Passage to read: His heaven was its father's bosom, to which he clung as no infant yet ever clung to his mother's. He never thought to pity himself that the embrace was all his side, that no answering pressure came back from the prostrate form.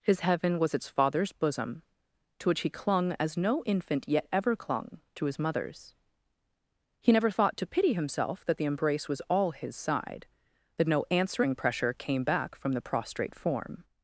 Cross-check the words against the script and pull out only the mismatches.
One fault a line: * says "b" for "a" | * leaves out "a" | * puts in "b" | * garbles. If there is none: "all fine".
all fine